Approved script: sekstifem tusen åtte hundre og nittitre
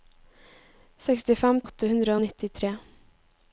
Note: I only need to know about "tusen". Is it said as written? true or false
false